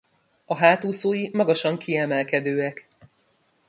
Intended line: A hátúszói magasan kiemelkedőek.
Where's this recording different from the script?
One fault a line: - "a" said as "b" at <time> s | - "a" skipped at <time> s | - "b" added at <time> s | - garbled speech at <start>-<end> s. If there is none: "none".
none